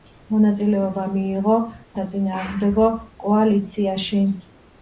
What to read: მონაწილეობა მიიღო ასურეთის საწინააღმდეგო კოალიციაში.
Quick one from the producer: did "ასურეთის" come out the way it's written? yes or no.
no